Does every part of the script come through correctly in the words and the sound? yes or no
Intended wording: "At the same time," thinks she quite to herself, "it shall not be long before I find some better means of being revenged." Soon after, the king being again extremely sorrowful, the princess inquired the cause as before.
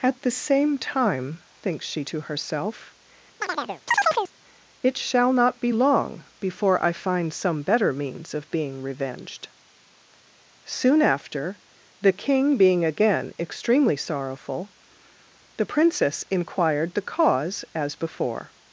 no